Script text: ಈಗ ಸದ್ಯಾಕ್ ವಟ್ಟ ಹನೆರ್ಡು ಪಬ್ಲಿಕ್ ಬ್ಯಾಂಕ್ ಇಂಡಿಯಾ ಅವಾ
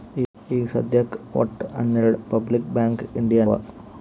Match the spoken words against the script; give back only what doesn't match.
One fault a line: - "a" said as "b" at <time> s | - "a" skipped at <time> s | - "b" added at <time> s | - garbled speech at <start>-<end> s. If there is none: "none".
none